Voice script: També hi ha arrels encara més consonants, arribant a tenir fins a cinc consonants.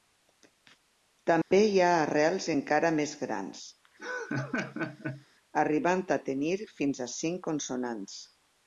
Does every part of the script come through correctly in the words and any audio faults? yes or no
no